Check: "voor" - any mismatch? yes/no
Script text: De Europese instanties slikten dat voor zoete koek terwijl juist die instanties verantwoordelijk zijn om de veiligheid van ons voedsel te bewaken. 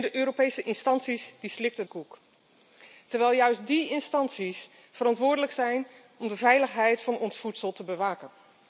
yes